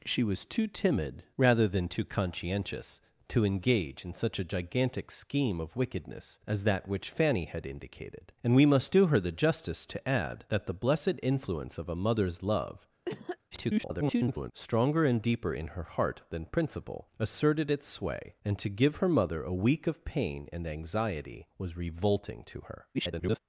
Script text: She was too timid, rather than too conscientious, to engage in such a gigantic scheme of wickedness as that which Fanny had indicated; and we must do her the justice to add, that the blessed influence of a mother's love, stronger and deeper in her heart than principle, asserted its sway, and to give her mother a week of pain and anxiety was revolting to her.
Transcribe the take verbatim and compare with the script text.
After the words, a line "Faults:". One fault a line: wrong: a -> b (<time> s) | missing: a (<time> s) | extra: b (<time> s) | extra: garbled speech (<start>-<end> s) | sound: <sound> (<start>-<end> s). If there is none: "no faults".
She was too timid, rather than too conscientious, to engage in such a gigantic scheme of wickedness as that which Fanny had indicated; and we must do her the justice to add, that the blessed influence of a mother's love, [garbled] stronger and deeper in her heart than principle, asserted its sway, and to give her mother a week of pain and anxiety was revolting to her. [garbled]
Faults:
sound: cough (13.0-13.4 s)
extra: garbled speech (13.5-14.5 s)
extra: garbled speech (22.9-23.4 s)